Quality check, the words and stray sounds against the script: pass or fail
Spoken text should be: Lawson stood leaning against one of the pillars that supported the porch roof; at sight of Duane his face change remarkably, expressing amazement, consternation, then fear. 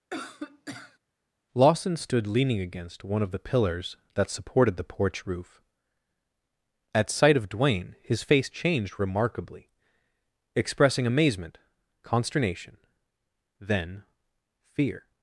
fail